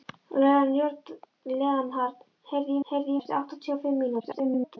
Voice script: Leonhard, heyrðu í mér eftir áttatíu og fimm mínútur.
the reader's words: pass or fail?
fail